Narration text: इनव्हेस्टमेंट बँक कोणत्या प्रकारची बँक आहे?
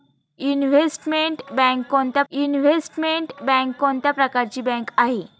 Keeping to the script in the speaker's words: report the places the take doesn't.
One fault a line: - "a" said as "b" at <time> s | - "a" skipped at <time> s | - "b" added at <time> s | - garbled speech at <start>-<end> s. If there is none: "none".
- "इनव्हेस्टमेंट बँक कोणत्या" added at 2.3 s